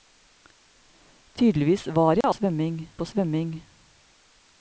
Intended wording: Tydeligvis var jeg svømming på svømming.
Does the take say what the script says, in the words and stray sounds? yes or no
no